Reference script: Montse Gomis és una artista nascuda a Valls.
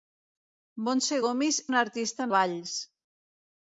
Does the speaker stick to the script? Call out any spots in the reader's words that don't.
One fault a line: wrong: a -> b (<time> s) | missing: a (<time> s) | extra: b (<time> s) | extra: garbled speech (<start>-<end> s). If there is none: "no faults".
missing: és (1.6 s)
missing: nascuda (2.3 s)